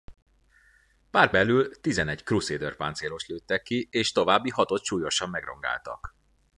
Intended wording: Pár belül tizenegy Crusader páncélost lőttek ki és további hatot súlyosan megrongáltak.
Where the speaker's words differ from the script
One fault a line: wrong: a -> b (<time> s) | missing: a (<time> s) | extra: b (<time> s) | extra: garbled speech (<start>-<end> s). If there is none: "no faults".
no faults